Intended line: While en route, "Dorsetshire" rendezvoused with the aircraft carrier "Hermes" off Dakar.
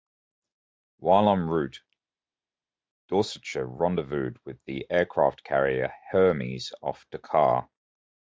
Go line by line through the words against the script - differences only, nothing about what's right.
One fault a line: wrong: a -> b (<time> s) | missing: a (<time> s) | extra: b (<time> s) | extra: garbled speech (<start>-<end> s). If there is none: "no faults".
no faults